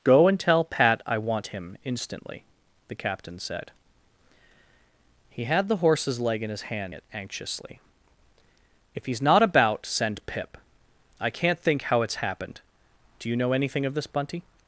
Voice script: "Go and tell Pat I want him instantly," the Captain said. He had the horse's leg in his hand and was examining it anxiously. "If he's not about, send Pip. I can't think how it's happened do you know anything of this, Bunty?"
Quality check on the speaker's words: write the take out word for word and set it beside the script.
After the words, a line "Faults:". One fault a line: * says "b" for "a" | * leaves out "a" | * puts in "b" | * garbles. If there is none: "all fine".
"Go and tell Pat I want him instantly," the Captain said. He had the horse's leg in his hand it anxiously. "If he's not about, send Pip. I can't think how it's happened do you know anything of this, Bunty?"
Faults:
* leaves out "and was examining"